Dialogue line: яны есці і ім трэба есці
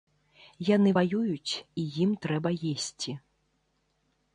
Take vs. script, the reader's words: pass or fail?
fail